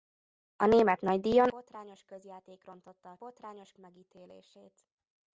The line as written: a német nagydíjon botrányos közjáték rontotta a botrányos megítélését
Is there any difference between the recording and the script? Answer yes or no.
no